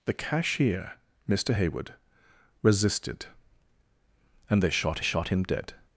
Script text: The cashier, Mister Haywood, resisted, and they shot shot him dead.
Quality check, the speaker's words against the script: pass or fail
pass